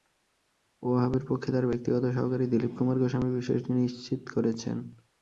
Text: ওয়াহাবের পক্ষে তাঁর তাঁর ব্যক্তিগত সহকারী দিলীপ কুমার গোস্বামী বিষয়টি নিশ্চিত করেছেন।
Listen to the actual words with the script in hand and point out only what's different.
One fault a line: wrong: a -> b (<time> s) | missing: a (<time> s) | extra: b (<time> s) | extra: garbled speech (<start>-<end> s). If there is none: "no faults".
missing: তাঁর (1.7 s)